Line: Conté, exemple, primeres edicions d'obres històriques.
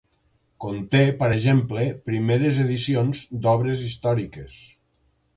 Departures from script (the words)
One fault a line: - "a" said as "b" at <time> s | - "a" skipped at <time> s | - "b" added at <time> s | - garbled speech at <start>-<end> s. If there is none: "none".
- "per" added at 1.2 s